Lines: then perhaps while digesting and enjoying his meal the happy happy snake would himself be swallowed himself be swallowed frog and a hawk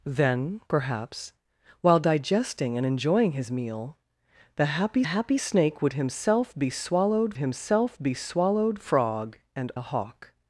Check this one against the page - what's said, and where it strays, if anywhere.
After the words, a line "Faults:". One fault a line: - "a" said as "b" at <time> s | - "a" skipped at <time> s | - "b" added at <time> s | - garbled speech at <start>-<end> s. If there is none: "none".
then perhaps while digesting and enjoying his meal the happy happy snake would himself be swallowed himself be swallowed frog and a hawk
Faults:
none